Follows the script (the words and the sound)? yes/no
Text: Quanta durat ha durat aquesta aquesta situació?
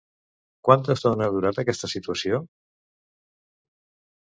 no